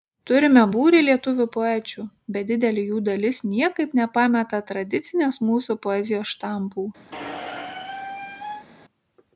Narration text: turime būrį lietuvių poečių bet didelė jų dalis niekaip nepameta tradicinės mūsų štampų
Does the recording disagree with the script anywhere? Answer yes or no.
yes